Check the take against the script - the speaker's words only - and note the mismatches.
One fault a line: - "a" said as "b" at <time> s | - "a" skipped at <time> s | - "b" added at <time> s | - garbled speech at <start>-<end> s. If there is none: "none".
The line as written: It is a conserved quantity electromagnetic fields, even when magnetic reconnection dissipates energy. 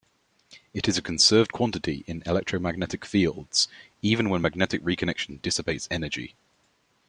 - "in" added at 2.1 s